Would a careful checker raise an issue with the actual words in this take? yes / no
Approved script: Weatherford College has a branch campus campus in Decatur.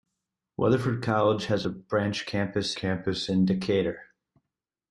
no